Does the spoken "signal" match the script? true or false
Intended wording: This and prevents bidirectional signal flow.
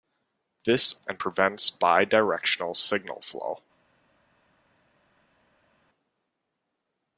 true